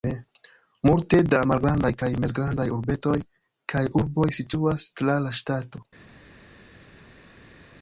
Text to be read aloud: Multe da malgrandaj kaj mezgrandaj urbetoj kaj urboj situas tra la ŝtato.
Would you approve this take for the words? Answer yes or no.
yes